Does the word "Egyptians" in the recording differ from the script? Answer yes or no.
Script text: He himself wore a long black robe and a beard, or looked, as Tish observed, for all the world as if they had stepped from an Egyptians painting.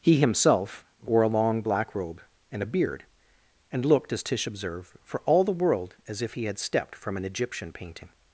yes